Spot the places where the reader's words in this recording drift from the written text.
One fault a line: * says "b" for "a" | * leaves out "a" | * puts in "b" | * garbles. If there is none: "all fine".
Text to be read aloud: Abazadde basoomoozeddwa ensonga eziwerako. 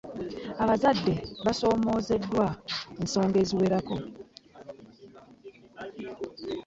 all fine